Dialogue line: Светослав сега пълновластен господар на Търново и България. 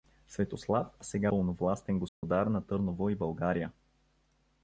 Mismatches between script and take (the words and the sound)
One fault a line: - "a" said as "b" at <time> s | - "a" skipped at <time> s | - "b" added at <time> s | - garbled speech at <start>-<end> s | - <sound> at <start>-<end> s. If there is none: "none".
- dropout at 2.1-2.2 s